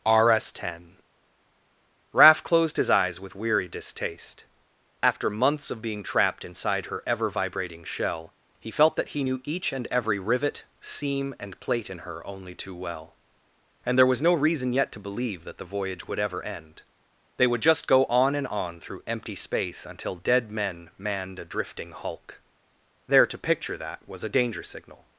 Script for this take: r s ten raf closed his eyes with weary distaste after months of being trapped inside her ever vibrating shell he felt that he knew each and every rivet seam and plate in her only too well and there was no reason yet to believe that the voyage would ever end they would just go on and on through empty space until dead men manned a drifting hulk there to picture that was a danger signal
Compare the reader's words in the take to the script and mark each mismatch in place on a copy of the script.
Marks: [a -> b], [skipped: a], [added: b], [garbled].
r s ten raf closed his eyes with weary distaste after months of being trapped inside her ever vibrating shell he felt that he knew each and every rivet seam and plate in her only too well and there was no reason yet to believe that the voyage would ever end they would just go on and on through empty space until dead men manned a drifting hulk there to picture that was a danger signal